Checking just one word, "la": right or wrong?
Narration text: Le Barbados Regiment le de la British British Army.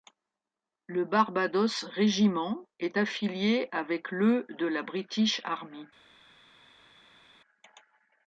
right